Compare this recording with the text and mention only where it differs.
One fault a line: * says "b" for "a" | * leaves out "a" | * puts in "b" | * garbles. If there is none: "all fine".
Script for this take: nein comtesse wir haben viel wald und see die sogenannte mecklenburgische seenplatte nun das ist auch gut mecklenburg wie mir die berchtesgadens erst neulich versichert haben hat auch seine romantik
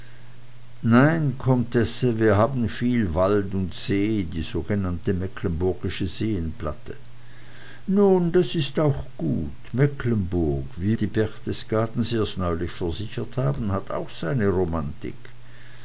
* leaves out "mir"